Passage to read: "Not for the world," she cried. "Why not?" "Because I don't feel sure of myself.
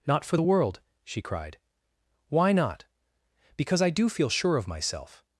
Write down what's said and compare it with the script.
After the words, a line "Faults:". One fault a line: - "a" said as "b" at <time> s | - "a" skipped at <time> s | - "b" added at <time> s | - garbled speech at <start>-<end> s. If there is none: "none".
"Not for the world," she cried. "Why not?" "Because I do feel sure of myself.
Faults:
- "don't" said as "do" at 3.9 s